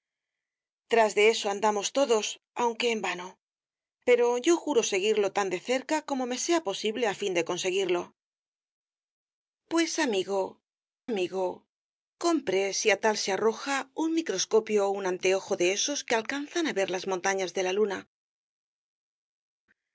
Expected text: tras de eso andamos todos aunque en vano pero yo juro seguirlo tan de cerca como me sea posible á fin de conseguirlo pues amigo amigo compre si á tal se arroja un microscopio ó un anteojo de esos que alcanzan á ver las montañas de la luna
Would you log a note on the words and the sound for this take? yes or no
no